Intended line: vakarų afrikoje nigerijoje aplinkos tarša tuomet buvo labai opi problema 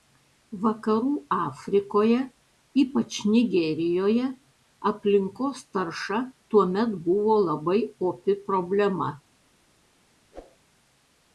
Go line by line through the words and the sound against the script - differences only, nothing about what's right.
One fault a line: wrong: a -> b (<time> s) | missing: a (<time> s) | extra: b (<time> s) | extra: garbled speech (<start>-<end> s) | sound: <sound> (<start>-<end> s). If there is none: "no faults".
extra: ypač (2.8 s)
sound: whoosh (10.3-10.6 s)